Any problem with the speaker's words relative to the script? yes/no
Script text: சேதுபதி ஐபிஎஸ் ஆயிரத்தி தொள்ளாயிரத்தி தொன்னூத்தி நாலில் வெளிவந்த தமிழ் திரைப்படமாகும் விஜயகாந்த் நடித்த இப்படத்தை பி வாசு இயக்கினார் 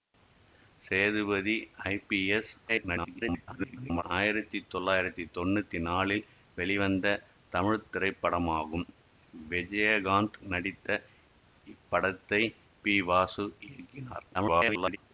yes